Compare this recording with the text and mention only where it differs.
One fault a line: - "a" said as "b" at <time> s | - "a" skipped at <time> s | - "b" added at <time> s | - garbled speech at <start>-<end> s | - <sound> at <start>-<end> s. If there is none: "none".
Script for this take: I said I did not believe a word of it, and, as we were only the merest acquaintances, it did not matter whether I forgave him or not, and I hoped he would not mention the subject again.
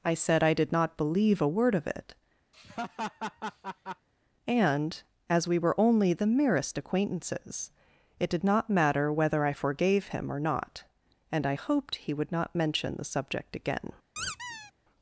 - laugh at 2.5-4.1 s
- squeak at 14.2-14.7 s